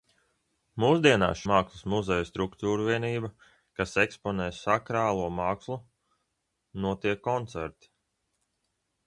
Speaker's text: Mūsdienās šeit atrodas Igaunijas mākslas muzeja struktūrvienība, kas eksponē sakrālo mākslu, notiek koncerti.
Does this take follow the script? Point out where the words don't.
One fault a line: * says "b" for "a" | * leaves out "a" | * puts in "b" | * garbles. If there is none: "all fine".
* leaves out "šeit atrodas Igaunijas"